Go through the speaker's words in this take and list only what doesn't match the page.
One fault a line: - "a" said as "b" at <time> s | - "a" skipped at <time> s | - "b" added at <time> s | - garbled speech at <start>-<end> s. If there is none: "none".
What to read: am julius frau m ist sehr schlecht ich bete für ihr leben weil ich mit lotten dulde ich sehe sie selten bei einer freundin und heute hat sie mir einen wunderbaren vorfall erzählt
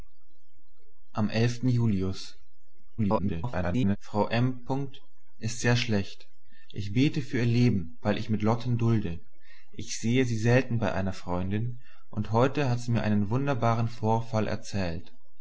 - garbled speech at 3.0-4.0 s